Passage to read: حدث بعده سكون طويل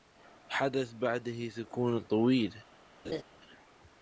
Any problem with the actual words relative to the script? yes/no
no